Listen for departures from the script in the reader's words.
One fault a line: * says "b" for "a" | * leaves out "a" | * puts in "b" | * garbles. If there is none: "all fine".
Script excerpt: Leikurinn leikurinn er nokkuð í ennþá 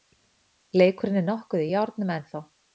* leaves out "leikurinn"
* puts in "járnum"